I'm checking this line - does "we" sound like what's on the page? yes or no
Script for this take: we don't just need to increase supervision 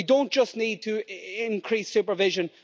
yes